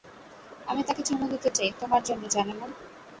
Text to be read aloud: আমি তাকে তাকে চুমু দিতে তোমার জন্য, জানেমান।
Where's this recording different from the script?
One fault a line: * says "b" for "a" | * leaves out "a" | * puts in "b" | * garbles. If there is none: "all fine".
* leaves out "তাকে"
* puts in "চাই"